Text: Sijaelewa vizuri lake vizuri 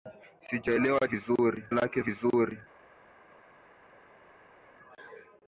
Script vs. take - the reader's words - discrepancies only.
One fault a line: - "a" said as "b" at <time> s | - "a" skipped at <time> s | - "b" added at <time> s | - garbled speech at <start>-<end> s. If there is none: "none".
none